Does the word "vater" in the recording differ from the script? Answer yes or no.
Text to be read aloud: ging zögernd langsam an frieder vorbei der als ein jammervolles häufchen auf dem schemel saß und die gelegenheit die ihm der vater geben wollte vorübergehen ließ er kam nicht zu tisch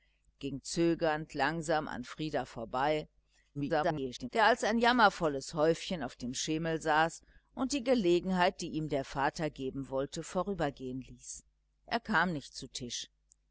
no